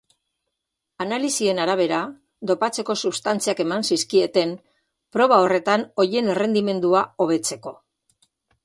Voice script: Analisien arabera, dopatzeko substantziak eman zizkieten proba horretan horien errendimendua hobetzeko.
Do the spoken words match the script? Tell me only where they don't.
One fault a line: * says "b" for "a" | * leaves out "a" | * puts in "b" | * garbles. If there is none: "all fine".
all fine